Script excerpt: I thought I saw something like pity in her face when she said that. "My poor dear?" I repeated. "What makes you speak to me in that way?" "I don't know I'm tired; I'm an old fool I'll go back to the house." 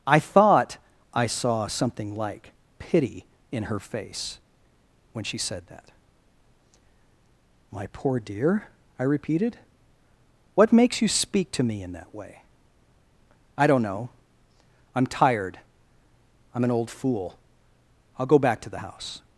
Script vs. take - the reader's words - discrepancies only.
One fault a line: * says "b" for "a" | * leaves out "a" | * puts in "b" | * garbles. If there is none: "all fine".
all fine